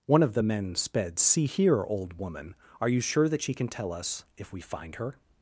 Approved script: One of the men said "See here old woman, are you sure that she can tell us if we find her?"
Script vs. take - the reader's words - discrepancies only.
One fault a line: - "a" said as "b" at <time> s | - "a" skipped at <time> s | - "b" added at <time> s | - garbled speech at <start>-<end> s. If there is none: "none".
- "said" said as "sped" at 0.8 s